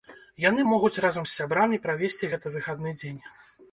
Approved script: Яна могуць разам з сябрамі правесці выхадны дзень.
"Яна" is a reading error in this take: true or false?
true